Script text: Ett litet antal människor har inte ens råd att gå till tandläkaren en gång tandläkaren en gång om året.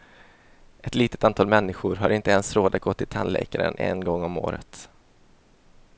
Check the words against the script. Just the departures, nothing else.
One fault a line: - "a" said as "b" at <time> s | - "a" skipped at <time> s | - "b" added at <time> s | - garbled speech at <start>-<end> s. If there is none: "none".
- "tandläkaren en gång" skipped at 4.2 s